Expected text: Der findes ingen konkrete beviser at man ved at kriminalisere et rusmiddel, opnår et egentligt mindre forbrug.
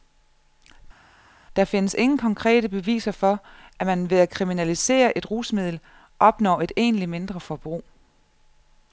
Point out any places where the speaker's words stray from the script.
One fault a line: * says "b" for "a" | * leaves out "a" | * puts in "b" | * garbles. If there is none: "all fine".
* puts in "for"